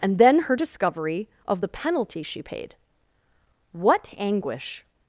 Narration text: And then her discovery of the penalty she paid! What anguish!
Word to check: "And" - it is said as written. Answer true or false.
true